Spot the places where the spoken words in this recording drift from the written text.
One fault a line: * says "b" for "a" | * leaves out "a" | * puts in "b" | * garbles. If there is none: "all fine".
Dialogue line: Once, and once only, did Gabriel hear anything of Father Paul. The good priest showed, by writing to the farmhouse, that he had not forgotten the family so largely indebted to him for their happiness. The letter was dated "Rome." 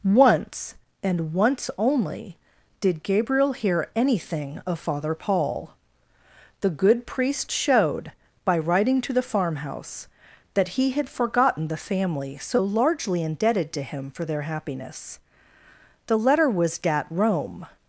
* leaves out "not"
* says "dat" for "dated"